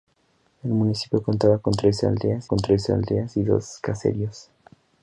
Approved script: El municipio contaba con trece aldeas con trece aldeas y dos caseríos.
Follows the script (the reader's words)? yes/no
yes